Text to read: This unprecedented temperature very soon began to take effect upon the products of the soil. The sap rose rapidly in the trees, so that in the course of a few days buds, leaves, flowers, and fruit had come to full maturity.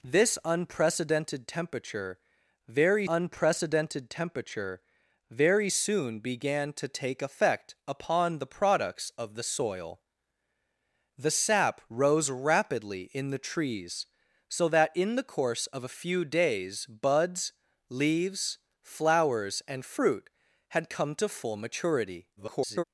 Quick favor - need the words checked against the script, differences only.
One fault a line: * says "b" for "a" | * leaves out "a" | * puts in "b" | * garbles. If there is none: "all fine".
* puts in "unprecedented temperature very"
* garbles